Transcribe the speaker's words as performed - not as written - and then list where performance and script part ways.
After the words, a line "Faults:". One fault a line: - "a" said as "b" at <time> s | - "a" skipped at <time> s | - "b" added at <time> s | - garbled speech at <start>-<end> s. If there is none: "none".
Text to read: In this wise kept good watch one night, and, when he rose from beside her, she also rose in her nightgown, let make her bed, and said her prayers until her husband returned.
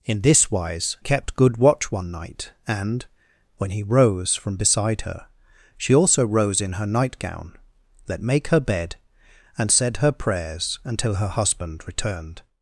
In this wise kept good watch one night, and, when he rose from beside her, she also rose in her nightgown, let make her bed, and said her prayers until her husband returned.
Faults:
none